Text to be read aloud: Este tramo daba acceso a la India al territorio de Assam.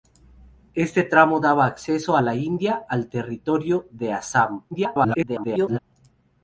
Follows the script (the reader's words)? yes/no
no